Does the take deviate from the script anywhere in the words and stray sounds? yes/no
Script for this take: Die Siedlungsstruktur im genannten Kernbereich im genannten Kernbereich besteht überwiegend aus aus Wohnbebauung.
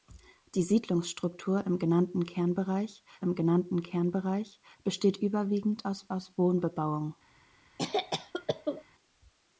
yes